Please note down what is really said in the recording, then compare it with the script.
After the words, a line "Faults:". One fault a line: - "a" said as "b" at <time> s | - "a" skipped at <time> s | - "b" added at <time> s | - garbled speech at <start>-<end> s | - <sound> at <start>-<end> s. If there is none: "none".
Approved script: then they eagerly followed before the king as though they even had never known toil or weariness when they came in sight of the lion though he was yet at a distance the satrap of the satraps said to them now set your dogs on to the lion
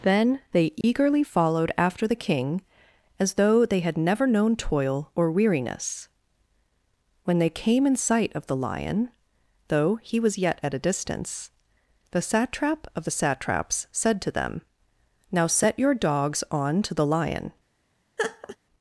then they eagerly followed after the king as though they had never known toil or weariness when they came in sight of the lion though he was yet at a distance the satrap of the satraps said to them now set your dogs on to the lion
Faults:
- dropout at 0.8-0.8 s
- "before" said as "after" at 1.8 s
- "even" skipped at 3.8 s
- laugh at 18.2-18.6 s